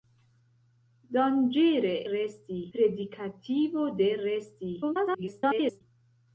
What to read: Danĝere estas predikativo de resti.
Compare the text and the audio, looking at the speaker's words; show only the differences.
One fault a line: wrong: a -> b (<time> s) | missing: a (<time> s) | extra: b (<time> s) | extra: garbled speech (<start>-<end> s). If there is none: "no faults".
wrong: estas -> resti (2.1 s)
extra: garbled speech (4.8-5.8 s)